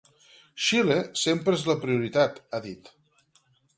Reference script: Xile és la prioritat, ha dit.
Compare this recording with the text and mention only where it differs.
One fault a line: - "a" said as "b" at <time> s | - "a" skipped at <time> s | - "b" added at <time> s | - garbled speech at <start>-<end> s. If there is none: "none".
- "sempre" added at 1.2 s